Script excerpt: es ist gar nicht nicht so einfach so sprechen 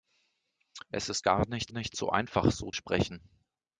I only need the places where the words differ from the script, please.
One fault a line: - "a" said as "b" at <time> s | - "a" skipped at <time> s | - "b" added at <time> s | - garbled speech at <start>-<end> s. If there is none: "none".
none